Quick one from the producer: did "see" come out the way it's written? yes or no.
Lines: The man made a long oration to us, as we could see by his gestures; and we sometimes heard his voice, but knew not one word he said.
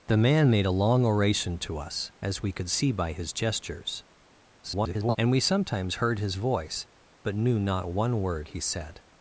yes